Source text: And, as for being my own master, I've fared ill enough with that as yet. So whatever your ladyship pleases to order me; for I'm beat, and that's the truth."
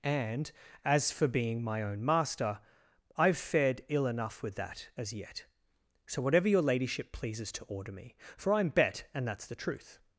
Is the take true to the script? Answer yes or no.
no